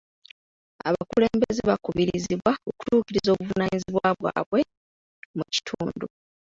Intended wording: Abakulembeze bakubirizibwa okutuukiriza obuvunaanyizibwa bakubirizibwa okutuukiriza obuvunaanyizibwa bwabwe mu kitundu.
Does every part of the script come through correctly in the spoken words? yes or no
no